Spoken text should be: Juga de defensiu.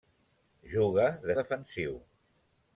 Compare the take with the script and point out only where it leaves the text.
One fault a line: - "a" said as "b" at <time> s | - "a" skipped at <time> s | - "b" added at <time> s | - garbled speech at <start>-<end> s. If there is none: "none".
none